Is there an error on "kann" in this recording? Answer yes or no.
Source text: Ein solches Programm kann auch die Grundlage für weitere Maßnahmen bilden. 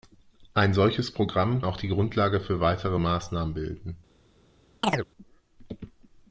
yes